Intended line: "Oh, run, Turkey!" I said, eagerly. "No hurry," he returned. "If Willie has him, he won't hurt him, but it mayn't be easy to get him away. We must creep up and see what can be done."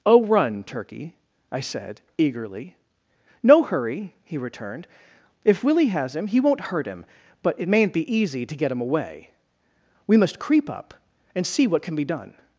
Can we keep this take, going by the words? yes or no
yes